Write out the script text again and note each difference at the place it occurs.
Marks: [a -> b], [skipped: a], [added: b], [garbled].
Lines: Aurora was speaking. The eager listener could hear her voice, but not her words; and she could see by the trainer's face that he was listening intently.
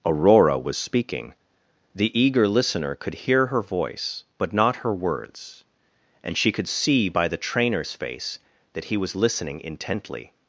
Aurora was speaking. The eager listener could hear her voice, but not her words; and she could see by the trainer's face that he was listening intently.